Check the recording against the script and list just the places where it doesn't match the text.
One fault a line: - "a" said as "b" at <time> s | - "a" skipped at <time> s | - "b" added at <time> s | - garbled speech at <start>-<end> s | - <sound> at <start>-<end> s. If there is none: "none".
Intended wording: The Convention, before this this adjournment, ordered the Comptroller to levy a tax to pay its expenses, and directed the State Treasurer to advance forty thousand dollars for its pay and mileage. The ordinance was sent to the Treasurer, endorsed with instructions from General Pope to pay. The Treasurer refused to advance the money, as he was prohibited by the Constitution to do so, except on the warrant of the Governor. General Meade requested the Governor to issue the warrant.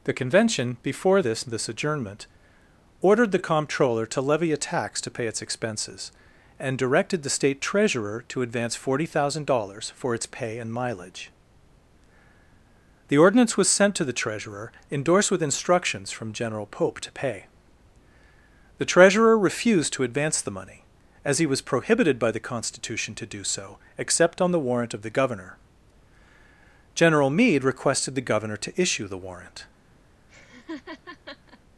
- laugh at 30.3-31.6 s